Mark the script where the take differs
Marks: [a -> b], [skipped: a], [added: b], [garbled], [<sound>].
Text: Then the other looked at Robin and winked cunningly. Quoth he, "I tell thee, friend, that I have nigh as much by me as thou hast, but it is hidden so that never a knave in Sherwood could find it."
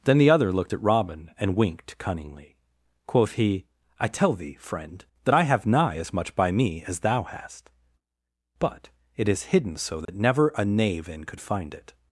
Then the other looked at Robin and winked cunningly. Quoth he, "I tell thee, friend, that I have nigh as much by me as thou hast, but it is hidden so that [dropout] never a knave in [skipped: Sherwood] could find it."